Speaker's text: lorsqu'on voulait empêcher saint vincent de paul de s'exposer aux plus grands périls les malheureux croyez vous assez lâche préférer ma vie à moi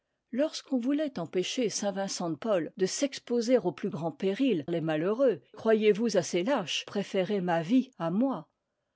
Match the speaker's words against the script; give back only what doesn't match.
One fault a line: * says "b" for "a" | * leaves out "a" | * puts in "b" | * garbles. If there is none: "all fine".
all fine